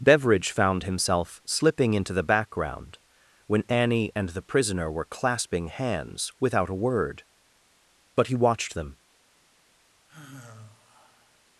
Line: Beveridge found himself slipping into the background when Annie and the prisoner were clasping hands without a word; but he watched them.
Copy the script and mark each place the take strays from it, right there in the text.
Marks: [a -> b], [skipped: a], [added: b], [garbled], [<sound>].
Beveridge found himself slipping into the background when Annie and the prisoner were clasping hands without a word; but he watched them. [sigh]